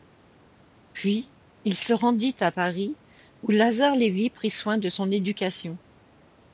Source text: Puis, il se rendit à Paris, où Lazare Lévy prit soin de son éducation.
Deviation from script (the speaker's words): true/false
false